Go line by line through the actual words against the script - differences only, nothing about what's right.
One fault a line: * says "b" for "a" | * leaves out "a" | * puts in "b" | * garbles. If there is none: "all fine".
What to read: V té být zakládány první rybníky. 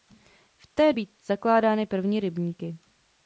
all fine